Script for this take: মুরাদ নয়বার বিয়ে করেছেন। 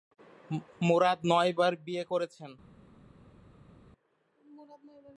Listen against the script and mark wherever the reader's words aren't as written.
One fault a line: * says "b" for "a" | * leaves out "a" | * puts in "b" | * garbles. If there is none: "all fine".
all fine